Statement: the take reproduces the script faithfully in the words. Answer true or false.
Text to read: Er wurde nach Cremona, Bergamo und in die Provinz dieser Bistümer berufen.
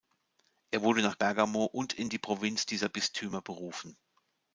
false